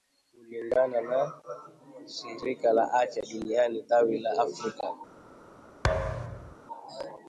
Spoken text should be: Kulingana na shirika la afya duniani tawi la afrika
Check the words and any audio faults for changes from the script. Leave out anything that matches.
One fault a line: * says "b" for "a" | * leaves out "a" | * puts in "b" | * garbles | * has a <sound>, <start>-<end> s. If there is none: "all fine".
* has a thud, 5.8-6.6 s